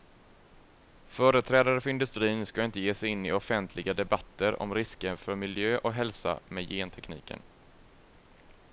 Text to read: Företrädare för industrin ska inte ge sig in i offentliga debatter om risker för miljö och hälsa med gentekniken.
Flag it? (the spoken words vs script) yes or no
no